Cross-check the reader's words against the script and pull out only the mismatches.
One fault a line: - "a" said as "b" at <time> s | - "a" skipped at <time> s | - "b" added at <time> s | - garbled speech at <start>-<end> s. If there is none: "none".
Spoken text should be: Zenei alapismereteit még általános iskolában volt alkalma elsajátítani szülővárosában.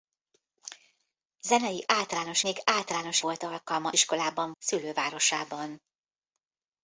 - "alapismereteit" said as "általános" at 1.9 s
- "iskolában" skipped at 3.2 s
- "elsajátítani" said as "iskolában" at 3.9 s